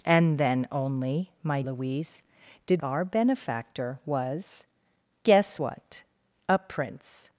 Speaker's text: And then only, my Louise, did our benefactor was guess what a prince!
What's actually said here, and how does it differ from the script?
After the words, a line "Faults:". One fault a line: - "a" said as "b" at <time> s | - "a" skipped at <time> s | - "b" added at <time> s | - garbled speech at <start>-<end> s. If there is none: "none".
And then only, my Louise, did our benefactor was guess what a prince!
Faults:
none